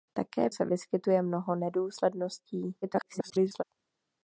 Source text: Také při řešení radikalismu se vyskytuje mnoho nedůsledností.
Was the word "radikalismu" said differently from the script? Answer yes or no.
yes